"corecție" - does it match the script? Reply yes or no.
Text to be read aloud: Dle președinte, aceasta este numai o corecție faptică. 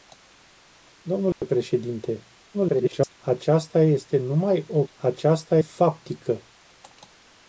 no